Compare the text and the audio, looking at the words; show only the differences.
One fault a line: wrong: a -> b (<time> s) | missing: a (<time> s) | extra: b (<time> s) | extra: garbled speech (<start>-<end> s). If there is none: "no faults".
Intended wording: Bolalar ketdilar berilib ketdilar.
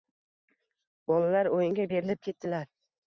wrong: ketdilar -> o'yinga (1.6 s)